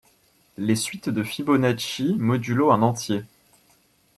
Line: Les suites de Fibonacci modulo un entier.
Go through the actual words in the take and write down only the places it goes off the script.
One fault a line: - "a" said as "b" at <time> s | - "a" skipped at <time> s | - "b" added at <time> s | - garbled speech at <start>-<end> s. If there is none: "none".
none